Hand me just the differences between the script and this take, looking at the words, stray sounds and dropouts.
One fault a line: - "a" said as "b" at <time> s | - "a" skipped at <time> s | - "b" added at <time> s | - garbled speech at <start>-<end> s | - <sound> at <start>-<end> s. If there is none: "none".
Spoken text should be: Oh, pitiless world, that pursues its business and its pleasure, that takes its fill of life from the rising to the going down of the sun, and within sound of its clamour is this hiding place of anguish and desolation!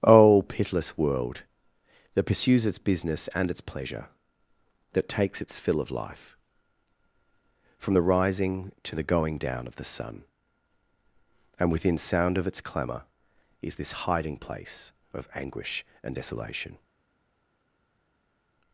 none